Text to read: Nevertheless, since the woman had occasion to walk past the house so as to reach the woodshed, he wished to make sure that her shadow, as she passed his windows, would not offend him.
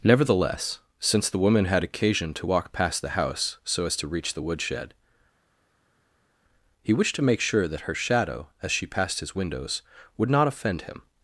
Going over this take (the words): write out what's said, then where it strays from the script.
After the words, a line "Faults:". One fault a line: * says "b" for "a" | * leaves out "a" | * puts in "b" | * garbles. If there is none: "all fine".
Nevertheless, since the woman had occasion to walk past the house so as to reach the woodshed, he wished to make sure that her shadow, as she passed his windows, would not offend him.
Faults:
all fine